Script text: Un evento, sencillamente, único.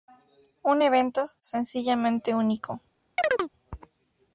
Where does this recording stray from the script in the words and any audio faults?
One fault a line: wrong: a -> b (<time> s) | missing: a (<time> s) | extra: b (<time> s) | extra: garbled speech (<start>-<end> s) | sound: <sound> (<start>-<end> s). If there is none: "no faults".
sound: chirp (3.2-3.5 s)